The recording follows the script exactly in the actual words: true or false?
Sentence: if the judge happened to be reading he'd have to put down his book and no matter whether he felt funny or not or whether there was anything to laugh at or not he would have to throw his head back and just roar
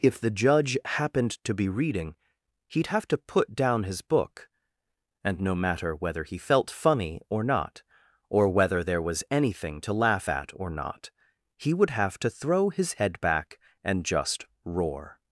true